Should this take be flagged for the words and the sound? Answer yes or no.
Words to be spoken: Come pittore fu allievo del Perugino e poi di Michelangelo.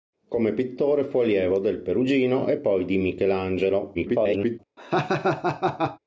yes